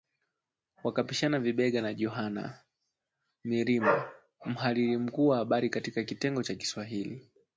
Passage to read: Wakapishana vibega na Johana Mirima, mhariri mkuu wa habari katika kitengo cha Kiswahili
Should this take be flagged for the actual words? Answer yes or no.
no